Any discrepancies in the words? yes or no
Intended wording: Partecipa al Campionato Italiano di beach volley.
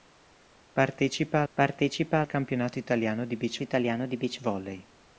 yes